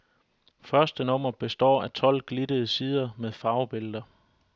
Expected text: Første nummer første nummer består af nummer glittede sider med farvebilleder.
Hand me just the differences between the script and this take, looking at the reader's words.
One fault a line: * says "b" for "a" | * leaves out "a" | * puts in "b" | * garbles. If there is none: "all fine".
* leaves out "første nummer"
* says "tolv" for "nummer"